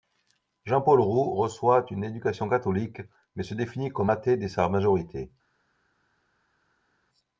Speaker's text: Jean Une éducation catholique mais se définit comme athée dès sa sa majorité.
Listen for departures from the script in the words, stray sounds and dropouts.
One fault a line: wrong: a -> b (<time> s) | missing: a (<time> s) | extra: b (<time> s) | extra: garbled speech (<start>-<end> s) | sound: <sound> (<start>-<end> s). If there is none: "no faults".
extra: Paul Roux reçoit (0.8 s)
missing: sa (4.7 s)